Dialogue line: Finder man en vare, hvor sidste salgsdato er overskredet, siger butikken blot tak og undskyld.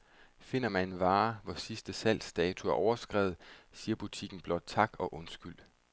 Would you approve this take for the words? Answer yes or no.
yes